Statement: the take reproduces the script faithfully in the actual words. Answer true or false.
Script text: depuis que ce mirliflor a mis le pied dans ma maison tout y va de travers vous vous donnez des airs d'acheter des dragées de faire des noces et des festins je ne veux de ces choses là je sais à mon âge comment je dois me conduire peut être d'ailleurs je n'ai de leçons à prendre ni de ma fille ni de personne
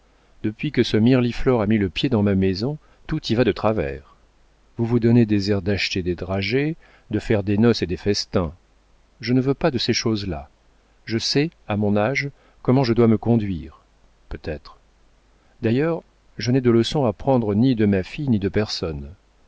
false